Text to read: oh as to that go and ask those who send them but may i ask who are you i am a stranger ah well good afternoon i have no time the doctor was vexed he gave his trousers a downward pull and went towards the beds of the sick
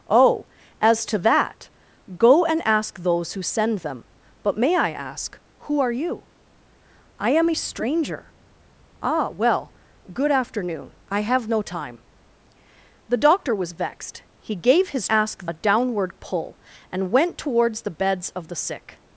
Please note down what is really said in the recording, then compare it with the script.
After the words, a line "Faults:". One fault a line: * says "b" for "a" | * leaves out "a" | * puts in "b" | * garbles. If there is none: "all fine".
oh as to that go and ask those who send them but may i ask who are you i am a stranger ah well good afternoon i have no time the doctor was vexed he gave his ask a downward pull and went towards the beds of the sick
Faults:
* says "ask" for "trousers"